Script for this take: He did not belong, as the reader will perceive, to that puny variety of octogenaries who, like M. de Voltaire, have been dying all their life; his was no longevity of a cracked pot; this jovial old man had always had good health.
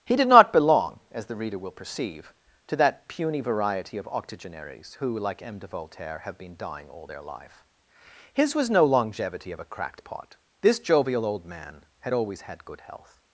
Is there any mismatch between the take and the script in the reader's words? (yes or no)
no